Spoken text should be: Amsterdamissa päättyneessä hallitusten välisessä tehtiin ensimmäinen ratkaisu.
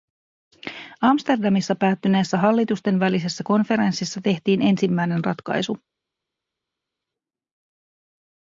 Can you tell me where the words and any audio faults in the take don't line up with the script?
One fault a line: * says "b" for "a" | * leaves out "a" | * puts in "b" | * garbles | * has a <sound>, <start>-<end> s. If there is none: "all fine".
* puts in "konferenssissa"